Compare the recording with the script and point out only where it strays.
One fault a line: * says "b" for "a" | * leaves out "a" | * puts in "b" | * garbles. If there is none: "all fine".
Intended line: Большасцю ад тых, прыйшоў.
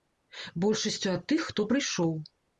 * puts in "хто"